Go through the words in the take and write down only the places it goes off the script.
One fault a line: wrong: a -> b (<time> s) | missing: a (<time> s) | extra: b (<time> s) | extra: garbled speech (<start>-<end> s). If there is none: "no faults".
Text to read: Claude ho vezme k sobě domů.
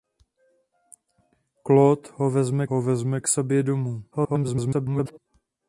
extra: ho vezme (2.6 s)
extra: garbled speech (4.1-5.2 s)